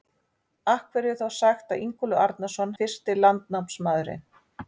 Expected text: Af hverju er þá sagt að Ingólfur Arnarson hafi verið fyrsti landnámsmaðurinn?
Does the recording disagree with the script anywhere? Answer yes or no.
yes